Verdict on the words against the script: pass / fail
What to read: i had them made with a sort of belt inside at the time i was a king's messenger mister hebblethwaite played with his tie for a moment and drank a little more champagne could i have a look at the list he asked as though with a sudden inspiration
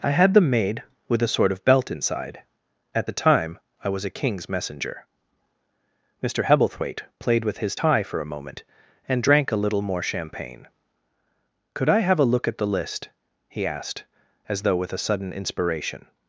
pass